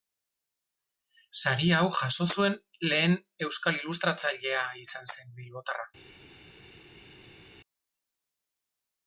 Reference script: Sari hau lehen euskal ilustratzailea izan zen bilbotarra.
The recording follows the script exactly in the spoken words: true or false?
false